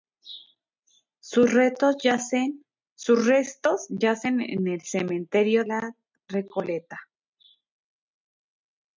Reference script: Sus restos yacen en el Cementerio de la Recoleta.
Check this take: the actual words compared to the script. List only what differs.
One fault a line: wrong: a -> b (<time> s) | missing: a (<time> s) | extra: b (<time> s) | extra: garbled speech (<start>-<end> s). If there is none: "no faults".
missing: de (5.6 s)